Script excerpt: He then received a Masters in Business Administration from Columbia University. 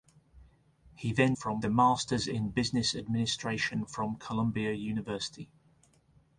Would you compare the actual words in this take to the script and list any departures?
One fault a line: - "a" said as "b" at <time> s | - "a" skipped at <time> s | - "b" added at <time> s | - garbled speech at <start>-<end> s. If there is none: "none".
- "received" said as "from" at 1.3 s